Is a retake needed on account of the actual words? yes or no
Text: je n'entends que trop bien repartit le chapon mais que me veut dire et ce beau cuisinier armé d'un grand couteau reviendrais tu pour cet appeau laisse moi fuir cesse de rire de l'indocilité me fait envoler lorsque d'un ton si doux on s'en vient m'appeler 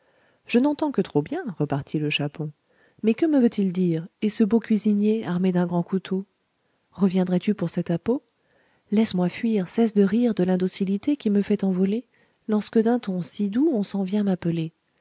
yes